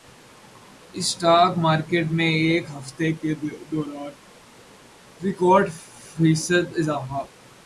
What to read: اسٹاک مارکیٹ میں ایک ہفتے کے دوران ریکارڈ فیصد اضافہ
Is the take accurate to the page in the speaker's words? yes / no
yes